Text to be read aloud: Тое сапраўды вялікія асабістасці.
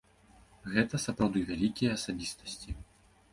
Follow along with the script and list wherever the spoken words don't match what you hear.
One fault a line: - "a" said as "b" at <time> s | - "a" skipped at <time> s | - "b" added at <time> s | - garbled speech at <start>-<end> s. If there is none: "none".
- "Тое" said as "Гэта" at 0.8 s